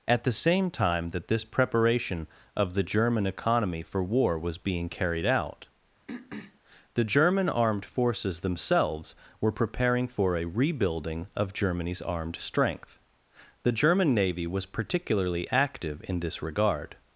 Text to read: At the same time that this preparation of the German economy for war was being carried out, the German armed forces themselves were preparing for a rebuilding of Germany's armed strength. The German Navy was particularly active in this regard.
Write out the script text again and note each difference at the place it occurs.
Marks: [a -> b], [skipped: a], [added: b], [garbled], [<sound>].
At the same time that this preparation of the German economy for war was being carried out, [throat clearing] the German armed forces themselves were preparing for a rebuilding of Germany's armed strength. The German Navy was particularly active in this regard.